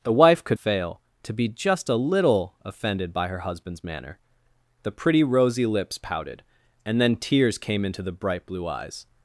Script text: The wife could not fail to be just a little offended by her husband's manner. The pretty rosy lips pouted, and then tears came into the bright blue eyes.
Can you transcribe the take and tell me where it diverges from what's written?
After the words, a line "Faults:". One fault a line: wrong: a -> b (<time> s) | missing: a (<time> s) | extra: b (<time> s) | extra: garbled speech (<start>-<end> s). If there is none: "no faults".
The wife could fail to be just a little offended by her husband's manner. The pretty rosy lips pouted, and then tears came into the bright blue eyes.
Faults:
missing: not (0.6 s)